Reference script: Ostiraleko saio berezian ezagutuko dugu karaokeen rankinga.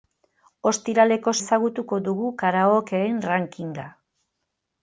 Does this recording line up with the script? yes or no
no